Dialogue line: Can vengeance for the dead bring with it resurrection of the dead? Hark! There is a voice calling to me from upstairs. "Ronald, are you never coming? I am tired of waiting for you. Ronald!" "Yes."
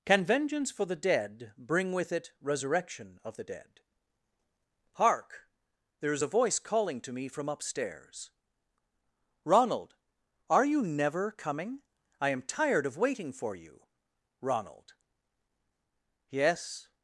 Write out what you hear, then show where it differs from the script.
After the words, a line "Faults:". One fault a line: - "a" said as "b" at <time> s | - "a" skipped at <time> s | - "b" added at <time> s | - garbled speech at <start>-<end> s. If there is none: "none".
Can vengeance for the dead bring with it resurrection of the dead? Hark! There is a voice calling to me from upstairs. "Ronald, are you never coming? I am tired of waiting for you. Ronald!" "Yes."
Faults:
none